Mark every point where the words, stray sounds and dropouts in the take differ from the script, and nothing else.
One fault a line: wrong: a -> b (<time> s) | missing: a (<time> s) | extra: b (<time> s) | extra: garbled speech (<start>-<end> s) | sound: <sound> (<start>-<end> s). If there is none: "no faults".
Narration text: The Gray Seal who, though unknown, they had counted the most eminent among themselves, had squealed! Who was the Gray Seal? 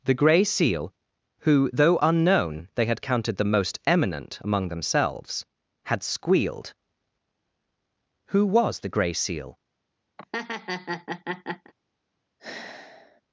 sound: laugh (10.2-11.7 s)
sound: sigh (12.4-13.2 s)